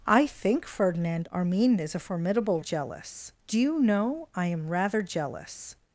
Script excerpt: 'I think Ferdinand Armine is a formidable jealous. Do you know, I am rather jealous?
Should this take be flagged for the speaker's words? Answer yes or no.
no